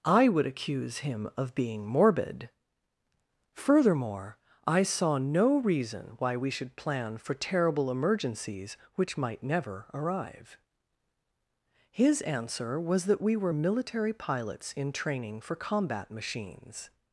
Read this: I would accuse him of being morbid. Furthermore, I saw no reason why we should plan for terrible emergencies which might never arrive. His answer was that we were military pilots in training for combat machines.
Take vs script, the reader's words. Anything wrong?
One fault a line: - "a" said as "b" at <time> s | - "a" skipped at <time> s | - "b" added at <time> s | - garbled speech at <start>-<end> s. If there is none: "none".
none